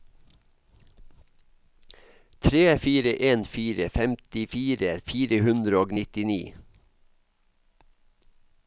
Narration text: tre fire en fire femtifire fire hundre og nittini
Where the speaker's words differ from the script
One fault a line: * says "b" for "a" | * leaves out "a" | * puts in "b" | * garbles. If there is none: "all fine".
all fine